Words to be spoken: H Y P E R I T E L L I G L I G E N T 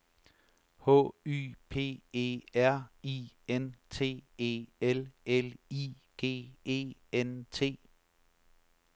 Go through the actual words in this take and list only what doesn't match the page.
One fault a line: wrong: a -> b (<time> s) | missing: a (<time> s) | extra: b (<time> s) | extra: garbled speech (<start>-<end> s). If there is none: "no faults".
extra: N (3.5 s)
missing: L I G (6.6 s)